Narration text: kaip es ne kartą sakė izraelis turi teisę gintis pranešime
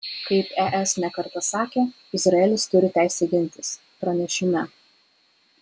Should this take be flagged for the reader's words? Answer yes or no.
no